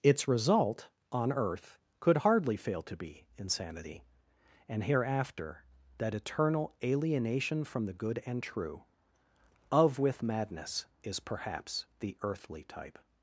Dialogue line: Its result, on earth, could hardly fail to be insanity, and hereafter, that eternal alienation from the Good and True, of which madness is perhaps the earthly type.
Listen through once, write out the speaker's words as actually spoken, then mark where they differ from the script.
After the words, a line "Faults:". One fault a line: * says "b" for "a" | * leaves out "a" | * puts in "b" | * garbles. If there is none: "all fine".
Its result, on earth, could hardly fail to be insanity, and hereafter, that eternal alienation from the Good and True, of with madness is perhaps the earthly type.
Faults:
* says "with" for "which"